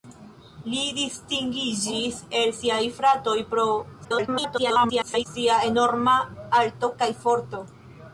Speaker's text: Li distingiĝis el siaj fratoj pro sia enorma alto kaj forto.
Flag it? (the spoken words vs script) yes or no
yes